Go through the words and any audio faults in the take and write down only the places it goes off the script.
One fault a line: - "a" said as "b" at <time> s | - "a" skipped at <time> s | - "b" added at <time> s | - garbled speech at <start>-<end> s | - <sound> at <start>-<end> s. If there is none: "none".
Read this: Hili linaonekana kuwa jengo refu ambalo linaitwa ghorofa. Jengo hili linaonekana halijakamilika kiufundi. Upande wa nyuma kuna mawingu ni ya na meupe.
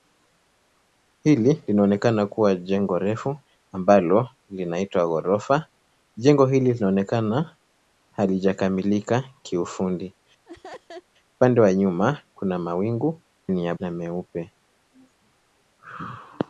- laugh at 10.5-11.1 s